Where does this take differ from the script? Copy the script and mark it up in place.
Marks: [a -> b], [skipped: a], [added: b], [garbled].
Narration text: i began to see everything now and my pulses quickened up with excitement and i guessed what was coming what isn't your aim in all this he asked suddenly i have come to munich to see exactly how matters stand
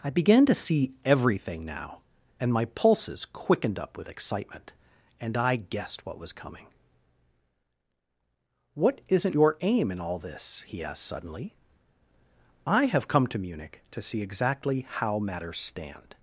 i began to see everything now and my pulses quickened up with excitement and i guessed what was coming what isn't your aim in all this he asked suddenly i have come to munich to see exactly how matters stand